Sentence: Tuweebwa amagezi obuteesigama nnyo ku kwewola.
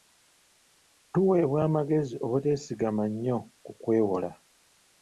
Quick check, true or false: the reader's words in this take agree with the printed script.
true